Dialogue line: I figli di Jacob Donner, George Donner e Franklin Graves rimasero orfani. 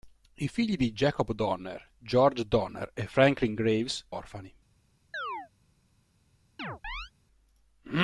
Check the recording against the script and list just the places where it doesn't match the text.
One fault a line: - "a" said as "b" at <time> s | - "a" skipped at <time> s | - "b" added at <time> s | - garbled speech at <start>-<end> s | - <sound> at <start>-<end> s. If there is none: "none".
- "rimasero" skipped at 4.1 s
- chirp at 5.1-5.5 s
- chirp at 6.6-7.1 s